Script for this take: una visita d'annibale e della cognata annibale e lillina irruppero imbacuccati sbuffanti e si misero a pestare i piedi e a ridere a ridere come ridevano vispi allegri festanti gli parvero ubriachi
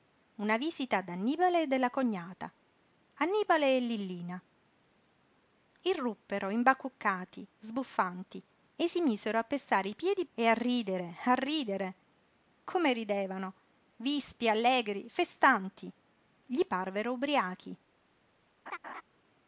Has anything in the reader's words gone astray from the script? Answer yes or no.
no